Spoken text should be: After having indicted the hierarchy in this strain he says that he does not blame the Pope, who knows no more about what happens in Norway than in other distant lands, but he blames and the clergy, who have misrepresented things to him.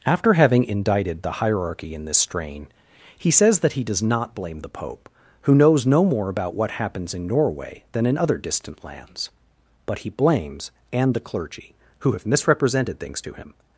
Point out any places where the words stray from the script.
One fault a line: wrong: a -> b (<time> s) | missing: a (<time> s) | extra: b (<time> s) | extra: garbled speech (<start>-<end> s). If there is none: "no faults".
no faults